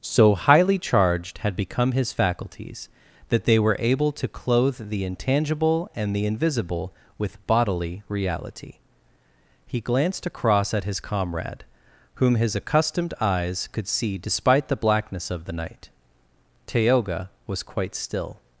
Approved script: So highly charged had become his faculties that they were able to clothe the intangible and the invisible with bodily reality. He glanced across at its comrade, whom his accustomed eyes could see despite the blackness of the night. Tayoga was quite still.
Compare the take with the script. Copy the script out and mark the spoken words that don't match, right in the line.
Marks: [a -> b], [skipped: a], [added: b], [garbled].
So highly charged had become his faculties that they were able to clothe the intangible and the invisible with bodily reality. He glanced across at [its -> his] comrade, whom his accustomed eyes could see despite the blackness of the night. Tayoga was quite still.